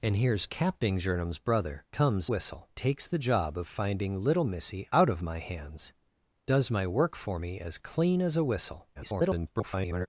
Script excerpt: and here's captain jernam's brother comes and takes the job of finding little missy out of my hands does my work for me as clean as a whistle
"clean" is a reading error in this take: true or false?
false